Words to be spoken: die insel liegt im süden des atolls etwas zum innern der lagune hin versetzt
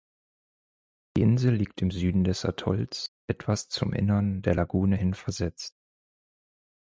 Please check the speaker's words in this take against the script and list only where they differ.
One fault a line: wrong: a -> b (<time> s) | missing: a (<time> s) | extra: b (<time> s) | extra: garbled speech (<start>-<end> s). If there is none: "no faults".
no faults